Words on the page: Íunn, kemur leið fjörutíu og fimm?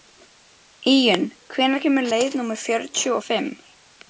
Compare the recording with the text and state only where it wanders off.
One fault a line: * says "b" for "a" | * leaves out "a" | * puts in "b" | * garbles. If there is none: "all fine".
* puts in "hvenær"
* puts in "númer"